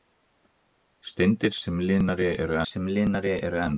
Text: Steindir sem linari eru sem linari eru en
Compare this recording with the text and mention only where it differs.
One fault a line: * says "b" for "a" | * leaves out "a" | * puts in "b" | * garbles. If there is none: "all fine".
all fine